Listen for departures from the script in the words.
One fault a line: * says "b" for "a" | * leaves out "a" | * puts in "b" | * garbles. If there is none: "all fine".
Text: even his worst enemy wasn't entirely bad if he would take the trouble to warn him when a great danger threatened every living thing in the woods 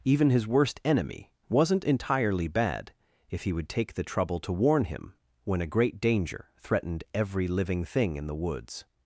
all fine